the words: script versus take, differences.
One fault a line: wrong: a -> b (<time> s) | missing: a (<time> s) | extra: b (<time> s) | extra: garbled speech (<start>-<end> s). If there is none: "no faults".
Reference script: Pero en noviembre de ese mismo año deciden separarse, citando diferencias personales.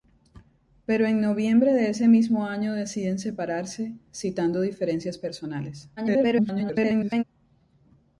extra: garbled speech (6.0-7.2 s)